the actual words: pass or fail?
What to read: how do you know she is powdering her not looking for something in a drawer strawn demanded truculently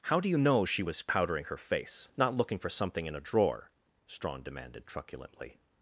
fail